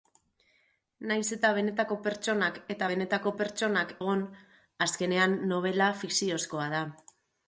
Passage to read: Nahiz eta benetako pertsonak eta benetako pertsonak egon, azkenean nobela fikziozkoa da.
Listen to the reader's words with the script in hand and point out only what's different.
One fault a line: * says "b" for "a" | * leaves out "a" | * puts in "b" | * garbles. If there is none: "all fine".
all fine